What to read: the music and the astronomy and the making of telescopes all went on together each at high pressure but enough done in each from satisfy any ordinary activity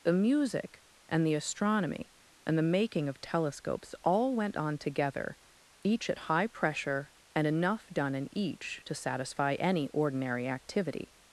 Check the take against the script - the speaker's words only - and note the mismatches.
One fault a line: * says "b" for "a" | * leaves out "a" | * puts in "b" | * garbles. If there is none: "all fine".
* says "and" for "but"
* says "to" for "from"